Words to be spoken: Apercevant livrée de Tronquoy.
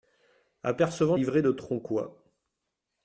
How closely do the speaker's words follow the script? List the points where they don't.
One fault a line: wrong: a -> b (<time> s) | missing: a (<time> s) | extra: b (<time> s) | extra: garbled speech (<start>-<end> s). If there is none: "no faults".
no faults